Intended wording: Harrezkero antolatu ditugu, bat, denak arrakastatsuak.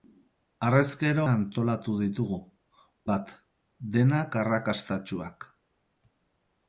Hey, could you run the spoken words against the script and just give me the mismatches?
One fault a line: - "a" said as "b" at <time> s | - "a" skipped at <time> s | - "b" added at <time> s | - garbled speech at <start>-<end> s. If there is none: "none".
none